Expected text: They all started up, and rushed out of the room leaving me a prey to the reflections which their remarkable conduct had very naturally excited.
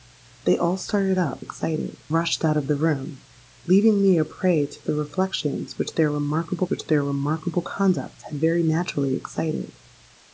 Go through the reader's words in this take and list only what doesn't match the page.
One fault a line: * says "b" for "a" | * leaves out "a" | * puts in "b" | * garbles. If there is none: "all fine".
* says "excited" for "and"
* puts in "which their remarkable"